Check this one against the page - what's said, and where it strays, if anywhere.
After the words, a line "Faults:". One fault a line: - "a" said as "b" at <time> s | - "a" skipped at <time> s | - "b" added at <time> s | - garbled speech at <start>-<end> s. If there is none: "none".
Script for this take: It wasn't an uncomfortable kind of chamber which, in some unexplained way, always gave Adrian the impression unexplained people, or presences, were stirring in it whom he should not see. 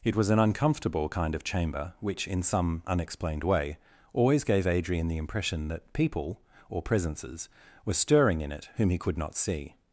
It was an uncomfortable kind of chamber which, in some unexplained way, always gave Adrian the impression that people, or presences, were stirring in it whom he could not see.
Faults:
- "wasn't" said as "was" at 0.1 s
- "unexplained" said as "that" at 5.7 s
- "should" said as "could" at 9.0 s